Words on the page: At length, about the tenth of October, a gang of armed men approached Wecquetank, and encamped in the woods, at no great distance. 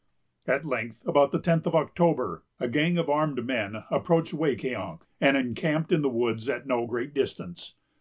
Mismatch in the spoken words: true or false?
false